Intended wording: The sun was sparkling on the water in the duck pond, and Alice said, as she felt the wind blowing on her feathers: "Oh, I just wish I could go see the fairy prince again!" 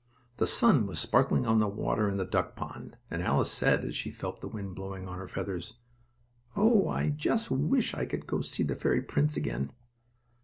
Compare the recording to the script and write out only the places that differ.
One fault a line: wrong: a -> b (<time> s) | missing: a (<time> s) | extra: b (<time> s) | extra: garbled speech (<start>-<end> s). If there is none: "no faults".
no faults